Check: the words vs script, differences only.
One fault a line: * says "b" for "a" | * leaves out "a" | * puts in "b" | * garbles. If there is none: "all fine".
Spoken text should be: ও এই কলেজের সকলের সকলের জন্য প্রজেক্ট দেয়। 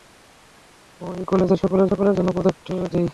all fine